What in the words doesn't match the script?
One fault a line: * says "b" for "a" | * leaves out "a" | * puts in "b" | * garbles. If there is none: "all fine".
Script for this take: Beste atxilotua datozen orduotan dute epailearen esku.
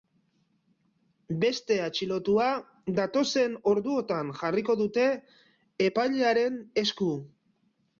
* puts in "jarriko"